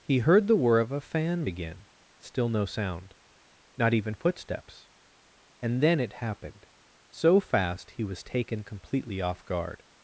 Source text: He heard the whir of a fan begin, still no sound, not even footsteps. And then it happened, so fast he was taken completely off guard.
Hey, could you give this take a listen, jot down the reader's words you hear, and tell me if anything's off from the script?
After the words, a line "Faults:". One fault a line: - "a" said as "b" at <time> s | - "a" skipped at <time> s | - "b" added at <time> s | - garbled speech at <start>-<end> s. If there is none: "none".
He heard the whir of a fan begin, still no sound, not even footsteps. And then it happened, so fast he was taken completely off guard.
Faults:
none